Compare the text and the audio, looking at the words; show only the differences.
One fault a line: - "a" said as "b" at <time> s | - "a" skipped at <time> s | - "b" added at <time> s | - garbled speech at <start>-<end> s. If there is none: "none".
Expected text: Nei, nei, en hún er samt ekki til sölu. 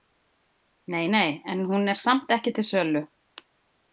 none